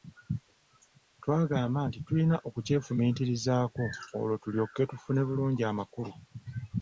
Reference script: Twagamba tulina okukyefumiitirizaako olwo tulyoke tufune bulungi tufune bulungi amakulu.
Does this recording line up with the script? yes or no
no